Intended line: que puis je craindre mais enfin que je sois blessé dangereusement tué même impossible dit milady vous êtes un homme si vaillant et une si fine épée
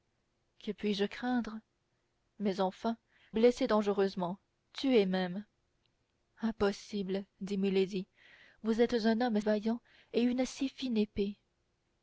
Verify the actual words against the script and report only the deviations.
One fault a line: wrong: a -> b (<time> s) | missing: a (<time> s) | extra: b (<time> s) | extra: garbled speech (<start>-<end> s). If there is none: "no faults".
missing: que je sois (3.0 s)
missing: si (9.4 s)